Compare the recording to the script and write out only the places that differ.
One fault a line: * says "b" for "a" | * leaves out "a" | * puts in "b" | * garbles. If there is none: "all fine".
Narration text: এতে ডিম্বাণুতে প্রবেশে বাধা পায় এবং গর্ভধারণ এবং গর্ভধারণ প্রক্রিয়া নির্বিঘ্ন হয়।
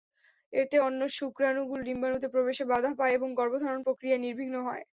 * puts in "অন্য শুক্রাণুগুলো"
* leaves out "এবং গর্ভধারণ"